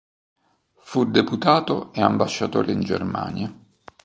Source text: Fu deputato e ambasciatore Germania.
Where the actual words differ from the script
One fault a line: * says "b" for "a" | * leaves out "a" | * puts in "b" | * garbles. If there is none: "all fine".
* puts in "in"